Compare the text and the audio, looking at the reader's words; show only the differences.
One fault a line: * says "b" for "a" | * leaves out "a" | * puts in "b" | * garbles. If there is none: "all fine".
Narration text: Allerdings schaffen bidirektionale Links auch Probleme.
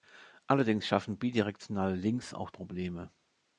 all fine